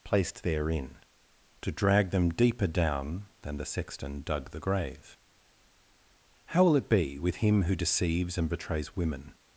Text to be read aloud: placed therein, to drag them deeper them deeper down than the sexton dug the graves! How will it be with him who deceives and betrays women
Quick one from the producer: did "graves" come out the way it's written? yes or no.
no